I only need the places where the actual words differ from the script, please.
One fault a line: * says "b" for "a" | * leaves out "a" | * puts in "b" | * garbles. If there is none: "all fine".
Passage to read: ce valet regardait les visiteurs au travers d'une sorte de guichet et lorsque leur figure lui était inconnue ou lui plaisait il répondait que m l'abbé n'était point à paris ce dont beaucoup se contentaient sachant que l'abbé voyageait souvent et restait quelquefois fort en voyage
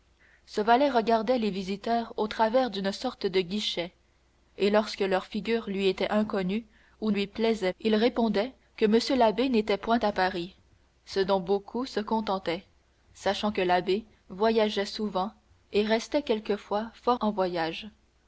all fine